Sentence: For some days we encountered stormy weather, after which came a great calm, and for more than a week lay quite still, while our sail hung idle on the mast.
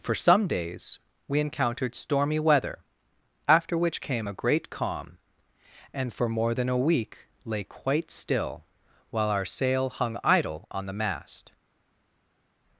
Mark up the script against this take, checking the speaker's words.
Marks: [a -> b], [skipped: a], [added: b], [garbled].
For some days we encountered stormy weather, after which came a great calm, and for more than a week lay quite still, while our sail hung idle on the mast.